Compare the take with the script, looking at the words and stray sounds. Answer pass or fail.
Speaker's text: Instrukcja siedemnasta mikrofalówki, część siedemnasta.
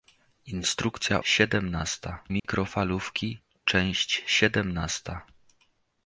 fail